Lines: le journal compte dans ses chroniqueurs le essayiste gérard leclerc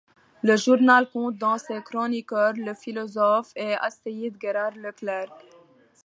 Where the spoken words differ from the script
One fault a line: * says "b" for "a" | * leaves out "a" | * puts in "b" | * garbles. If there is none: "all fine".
* puts in "philosophe et"